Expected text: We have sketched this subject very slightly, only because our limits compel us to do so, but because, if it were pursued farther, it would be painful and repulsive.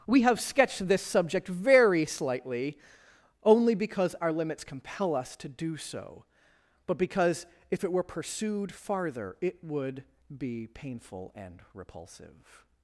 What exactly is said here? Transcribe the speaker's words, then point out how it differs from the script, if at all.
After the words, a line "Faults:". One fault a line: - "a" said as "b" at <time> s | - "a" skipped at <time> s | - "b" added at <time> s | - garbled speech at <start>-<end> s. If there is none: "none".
We have sketched this subject very slightly, only because our limits compel us to do so, but because, if it were pursued farther, it would be painful and repulsive.
Faults:
none